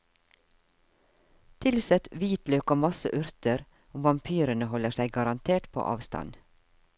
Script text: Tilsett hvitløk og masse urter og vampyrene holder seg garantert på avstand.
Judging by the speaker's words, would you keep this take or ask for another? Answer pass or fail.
pass